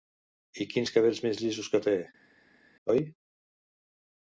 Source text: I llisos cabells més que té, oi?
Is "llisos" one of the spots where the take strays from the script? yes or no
yes